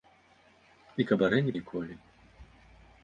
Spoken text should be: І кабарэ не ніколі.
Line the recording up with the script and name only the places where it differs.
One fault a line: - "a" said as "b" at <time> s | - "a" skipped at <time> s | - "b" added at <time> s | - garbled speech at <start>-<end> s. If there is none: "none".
none